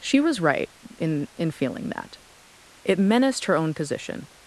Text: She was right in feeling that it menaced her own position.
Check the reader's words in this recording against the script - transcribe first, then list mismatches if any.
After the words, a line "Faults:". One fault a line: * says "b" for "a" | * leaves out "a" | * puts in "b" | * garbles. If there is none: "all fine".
She was right in in feeling that it menaced her own position.
Faults:
* puts in "in"